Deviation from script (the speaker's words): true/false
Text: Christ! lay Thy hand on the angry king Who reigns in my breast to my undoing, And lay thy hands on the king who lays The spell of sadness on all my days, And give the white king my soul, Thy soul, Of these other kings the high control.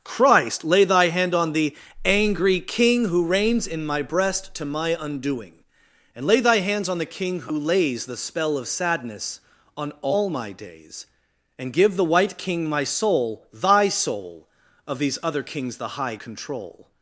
false